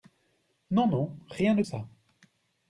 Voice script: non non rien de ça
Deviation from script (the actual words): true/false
false